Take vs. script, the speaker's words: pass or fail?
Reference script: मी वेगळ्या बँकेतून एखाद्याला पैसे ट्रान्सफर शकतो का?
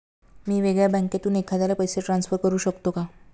fail